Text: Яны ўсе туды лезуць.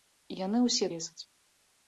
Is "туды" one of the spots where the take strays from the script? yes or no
yes